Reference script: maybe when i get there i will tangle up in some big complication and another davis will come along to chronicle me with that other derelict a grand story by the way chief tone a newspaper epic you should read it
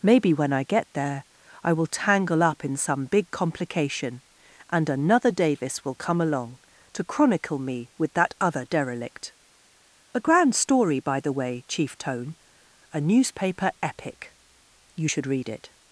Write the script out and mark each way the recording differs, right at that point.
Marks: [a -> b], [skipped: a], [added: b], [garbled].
maybe when i get there i will tangle up in some big complication and another davis will come along to chronicle me with that other derelict a grand story by the way chief tone a newspaper epic you should read it